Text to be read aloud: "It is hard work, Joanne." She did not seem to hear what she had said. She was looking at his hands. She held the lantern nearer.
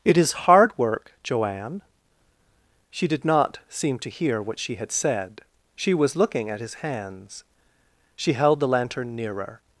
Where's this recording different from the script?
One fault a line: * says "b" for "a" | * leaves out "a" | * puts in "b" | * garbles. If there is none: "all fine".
all fine